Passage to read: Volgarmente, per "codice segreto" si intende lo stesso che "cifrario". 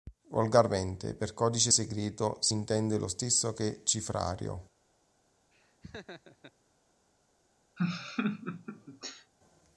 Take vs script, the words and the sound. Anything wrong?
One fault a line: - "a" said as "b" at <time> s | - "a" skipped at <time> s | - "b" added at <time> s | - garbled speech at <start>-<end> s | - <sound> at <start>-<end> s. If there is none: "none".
- laugh at 5.5-6.5 s
- laugh at 7.8-9.3 s